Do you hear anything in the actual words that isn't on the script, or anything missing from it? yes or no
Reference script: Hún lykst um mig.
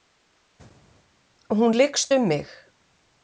no